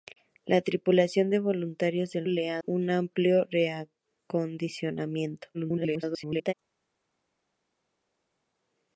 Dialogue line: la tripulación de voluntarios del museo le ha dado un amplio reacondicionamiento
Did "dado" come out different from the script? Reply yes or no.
yes